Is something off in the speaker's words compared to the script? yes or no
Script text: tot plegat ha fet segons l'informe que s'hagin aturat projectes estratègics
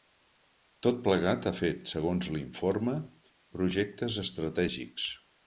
yes